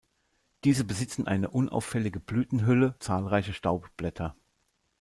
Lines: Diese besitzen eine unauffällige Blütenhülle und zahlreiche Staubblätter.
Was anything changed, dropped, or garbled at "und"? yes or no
yes